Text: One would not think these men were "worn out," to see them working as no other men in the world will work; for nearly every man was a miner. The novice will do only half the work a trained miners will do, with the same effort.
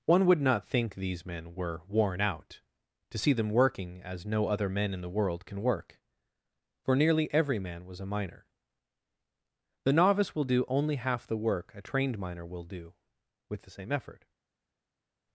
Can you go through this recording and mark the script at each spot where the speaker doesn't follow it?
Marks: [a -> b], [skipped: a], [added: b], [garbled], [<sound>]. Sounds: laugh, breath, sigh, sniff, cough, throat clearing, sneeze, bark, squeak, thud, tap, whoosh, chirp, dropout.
One would not think these men were "worn out," to see them working as no other men in the world [will -> can] work; for nearly every man was a miner. The novice will do only half the work a trained [miners -> miner] will do, with the same effort.